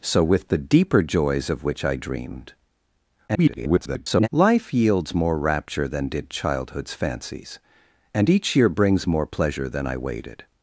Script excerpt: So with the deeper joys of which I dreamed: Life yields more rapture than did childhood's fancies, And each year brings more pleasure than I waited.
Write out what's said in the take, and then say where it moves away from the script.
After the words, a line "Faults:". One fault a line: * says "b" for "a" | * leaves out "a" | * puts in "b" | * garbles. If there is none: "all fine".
So with the deeper joys of which I dreamed: [garbled] Life yields more rapture than did childhood's fancies, And each year brings more pleasure than I waited.
Faults:
* garbles